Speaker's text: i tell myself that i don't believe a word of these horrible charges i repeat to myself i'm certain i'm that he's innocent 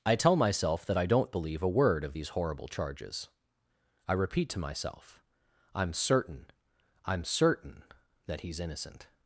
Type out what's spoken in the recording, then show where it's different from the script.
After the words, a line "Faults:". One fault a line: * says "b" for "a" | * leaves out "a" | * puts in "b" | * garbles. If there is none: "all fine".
i tell myself that i don't believe a word of these horrible charges i repeat to myself i'm certain i'm certain that he's innocent
Faults:
* puts in "certain"